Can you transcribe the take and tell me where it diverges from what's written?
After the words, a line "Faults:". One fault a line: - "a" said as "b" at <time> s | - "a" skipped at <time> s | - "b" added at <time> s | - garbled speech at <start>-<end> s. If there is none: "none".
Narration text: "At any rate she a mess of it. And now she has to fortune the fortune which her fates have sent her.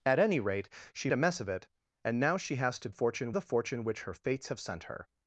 "At any rate she a mess of it. And now she has to fortune the fortune which her fates have sent her.
Faults:
none